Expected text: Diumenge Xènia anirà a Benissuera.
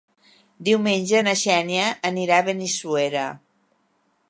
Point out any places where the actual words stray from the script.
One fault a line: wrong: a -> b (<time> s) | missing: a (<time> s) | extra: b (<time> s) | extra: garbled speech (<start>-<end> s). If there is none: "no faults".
extra: na (1.3 s)